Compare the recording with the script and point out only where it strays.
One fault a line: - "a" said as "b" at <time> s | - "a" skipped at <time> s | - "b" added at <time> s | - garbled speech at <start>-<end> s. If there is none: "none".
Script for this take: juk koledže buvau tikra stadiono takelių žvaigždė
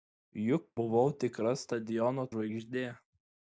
- "koledže" skipped at 0.6 s
- "takelių" skipped at 2.3 s